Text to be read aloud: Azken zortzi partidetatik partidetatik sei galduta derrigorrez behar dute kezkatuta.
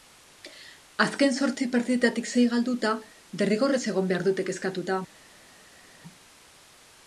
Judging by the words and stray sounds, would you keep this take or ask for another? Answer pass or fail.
fail